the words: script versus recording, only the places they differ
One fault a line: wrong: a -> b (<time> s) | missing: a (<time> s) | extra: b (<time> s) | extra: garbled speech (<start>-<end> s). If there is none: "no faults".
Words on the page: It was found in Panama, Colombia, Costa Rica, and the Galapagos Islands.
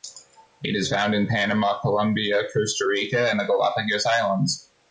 wrong: was -> is (0.8 s)